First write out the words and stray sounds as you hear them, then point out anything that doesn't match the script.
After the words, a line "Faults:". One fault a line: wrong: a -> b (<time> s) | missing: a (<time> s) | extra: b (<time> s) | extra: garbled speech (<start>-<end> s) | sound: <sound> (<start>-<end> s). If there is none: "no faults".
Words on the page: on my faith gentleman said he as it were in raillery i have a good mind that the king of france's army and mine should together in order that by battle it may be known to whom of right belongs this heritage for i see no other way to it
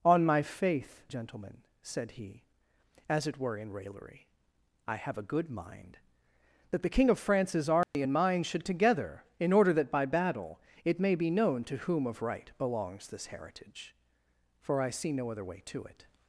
on my faith gentleman said he as it were in raillery i have a good mind that the king of france's army and mine should together in order that by battle it may be known to whom of right belongs this heritage for i see no other way to it
Faults:
sound: dropout (7.8-7.9 s)